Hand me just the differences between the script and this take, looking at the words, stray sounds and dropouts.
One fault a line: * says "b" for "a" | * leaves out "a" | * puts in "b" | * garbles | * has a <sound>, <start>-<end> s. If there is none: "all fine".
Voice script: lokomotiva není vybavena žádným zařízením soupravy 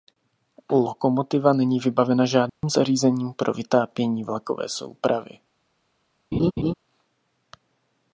* has a dropout, 2.5-2.6 s
* puts in "pro vytápění vlakové"
* has a laugh, 6.3-6.7 s